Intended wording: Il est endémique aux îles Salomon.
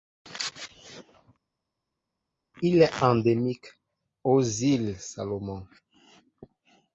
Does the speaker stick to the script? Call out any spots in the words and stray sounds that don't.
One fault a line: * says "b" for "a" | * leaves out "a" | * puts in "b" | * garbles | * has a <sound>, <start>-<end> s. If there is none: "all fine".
all fine